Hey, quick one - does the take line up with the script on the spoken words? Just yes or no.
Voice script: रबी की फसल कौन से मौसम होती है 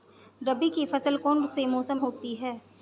yes